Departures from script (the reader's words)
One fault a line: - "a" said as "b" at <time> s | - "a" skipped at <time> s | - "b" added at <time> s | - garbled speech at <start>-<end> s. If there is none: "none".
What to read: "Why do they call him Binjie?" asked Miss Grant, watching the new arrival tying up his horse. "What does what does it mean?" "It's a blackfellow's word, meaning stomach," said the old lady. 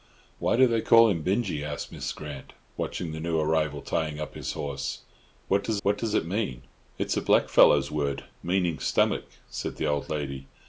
none